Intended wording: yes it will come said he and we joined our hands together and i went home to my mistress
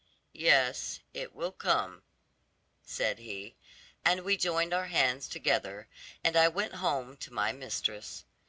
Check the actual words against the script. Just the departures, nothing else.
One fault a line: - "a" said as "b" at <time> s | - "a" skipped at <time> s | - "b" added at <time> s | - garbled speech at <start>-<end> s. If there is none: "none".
none